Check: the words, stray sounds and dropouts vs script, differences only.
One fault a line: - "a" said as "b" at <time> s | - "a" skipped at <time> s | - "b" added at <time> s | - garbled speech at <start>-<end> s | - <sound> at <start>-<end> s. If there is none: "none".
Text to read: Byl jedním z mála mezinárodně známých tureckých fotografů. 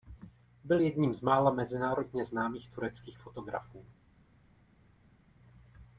none